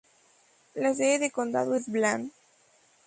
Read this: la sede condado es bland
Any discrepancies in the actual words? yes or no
yes